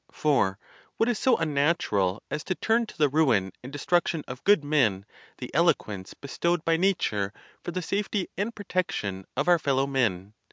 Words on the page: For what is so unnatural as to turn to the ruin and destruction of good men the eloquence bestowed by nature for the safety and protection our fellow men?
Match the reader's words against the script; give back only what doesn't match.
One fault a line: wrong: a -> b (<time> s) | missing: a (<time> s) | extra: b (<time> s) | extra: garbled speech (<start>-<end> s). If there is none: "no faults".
extra: of (9.4 s)